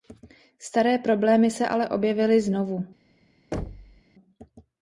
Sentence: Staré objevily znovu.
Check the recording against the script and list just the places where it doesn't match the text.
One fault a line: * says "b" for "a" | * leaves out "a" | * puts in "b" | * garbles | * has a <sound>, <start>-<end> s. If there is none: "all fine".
* puts in "problémy se ale"
* has a thud, 3.5-4.0 s